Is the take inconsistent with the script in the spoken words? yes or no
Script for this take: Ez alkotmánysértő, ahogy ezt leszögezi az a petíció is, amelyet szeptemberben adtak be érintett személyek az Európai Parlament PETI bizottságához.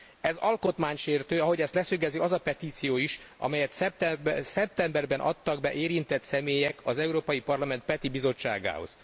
no